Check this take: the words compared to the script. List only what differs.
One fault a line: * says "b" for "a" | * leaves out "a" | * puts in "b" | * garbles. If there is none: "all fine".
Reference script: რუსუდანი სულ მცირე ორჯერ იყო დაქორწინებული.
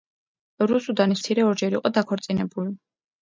* leaves out "სულ"